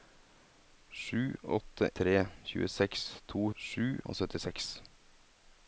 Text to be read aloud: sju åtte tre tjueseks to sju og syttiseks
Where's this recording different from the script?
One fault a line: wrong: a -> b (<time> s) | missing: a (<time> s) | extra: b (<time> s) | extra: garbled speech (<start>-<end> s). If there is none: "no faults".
no faults